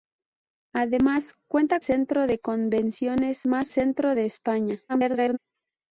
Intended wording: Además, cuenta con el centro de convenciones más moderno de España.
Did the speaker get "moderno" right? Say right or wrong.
wrong